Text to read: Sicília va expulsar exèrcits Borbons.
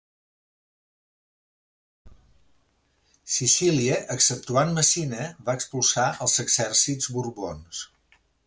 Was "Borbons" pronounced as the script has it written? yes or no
yes